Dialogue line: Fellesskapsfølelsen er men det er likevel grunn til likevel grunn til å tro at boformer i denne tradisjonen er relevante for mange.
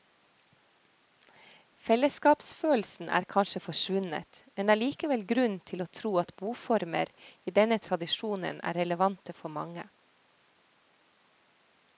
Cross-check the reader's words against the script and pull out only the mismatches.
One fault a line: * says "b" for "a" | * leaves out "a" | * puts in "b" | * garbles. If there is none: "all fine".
* puts in "kanskje forsvunnet"
* leaves out "likevel grunn til"